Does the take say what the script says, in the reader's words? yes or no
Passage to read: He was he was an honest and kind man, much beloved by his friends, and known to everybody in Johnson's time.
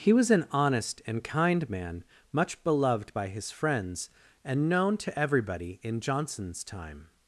no